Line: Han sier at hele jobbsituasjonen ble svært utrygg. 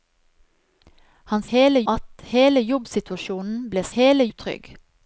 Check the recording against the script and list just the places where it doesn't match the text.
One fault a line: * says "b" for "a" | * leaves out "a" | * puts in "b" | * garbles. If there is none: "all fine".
* says "hele" for "sier"
* says "hele" for "svært"